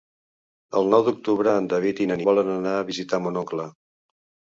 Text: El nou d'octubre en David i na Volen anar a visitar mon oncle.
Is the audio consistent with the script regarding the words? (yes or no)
yes